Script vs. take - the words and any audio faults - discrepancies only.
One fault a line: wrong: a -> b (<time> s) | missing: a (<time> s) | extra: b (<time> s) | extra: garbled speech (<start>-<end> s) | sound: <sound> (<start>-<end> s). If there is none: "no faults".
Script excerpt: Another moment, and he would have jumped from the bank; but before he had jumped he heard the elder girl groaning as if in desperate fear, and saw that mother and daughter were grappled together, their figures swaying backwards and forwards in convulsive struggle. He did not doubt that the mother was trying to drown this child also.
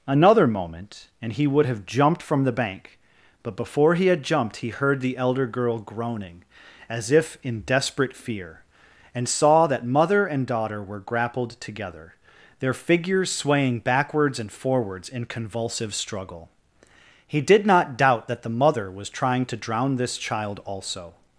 no faults